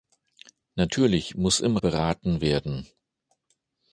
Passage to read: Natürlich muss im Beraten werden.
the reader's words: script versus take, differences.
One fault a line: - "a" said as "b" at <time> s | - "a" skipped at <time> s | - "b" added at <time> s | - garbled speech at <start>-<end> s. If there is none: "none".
none